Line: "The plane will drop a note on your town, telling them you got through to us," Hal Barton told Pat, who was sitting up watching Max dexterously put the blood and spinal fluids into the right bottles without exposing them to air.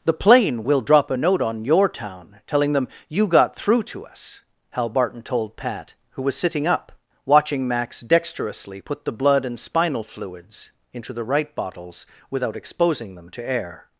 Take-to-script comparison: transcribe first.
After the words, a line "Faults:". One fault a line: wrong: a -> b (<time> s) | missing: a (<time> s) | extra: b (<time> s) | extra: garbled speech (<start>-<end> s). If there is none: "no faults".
"The plane will drop a note on your town, telling them you got through to us," Hal Barton told Pat, who was sitting up watching Max dexterously put the blood and spinal fluids into the right bottles without exposing them to air.
Faults:
no faults